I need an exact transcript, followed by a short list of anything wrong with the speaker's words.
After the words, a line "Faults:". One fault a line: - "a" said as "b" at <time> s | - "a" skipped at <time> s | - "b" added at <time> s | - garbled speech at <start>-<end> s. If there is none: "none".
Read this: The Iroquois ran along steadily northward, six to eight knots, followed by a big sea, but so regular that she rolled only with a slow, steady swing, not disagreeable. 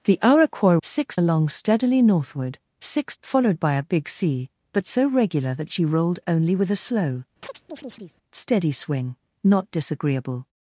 The Iroquois six along steadily northward, six followed by a big sea, but so regular that she rolled only with a slow, steady swing, not disagreeable.
Faults:
- "ran" said as "six" at 0.8 s
- "to eight knots" skipped at 3.1 s